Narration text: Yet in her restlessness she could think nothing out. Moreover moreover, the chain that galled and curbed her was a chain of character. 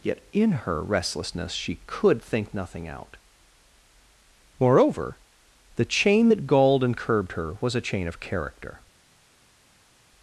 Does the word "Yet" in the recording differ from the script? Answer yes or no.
no